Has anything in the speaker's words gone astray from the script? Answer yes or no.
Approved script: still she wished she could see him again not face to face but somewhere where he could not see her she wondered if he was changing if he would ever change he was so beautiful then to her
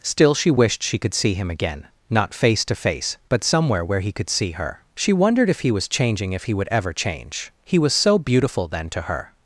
yes